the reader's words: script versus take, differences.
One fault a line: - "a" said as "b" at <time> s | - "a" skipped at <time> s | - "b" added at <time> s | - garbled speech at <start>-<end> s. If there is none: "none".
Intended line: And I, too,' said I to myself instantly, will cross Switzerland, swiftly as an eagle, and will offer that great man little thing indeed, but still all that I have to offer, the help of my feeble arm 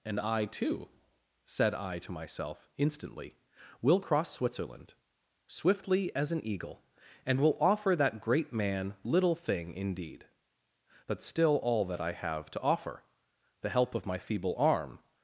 none